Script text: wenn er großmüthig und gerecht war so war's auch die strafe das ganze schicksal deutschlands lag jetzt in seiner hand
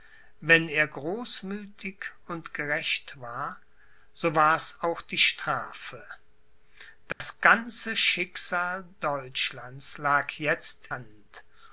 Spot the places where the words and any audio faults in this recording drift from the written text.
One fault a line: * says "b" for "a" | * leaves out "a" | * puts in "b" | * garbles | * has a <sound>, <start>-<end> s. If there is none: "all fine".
* has a dropout, 7.1-7.2 s
* leaves out "in seiner"